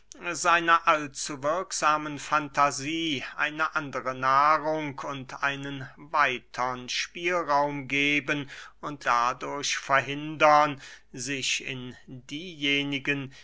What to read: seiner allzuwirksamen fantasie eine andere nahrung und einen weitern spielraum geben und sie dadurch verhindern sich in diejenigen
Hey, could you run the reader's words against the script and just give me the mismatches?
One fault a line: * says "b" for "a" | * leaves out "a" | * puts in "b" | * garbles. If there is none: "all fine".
* leaves out "sie"